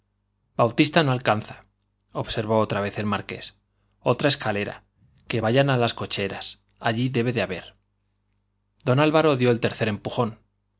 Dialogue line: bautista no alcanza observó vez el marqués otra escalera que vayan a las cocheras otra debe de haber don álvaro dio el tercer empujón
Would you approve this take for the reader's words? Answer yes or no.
no